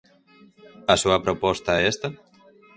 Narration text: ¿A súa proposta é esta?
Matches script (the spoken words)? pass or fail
pass